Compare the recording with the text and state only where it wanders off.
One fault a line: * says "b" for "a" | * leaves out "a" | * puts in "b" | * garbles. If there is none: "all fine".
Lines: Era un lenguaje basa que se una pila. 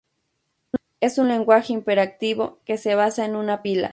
* says "Es" for "Era"
* says "imperativo" for "basa"
* puts in "basa en"